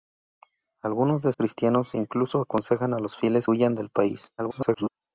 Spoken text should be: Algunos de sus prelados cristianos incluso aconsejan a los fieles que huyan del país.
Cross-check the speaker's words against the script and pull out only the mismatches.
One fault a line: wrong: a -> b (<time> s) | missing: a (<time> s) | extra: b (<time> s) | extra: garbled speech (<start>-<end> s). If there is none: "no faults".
missing: sus prelados (1.3 s)
missing: que (3.5 s)
extra: garbled speech (4.4-4.9 s)